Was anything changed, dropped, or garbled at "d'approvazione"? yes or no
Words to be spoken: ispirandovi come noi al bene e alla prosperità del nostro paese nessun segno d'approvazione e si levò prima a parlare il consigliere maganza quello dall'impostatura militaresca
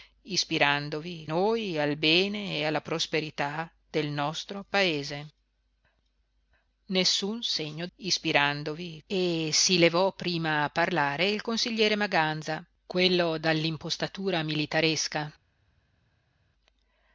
yes